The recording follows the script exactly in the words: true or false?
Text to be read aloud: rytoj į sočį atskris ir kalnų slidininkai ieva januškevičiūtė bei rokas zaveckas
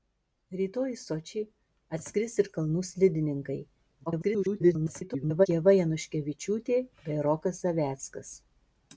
false